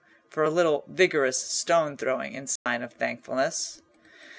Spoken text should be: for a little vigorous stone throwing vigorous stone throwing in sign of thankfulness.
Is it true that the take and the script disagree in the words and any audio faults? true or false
true